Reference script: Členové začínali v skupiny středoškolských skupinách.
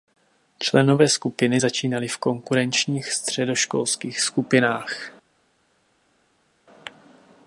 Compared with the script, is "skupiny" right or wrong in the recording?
wrong